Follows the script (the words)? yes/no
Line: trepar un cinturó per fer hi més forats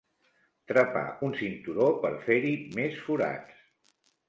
yes